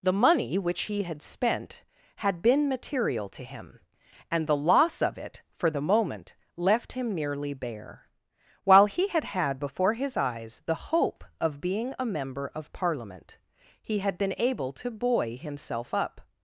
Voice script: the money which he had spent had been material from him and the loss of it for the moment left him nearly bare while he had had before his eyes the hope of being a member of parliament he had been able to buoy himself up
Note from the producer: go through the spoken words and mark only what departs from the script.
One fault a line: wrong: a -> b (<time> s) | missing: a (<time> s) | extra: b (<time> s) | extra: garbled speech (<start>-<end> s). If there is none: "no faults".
wrong: from -> to (3.3 s)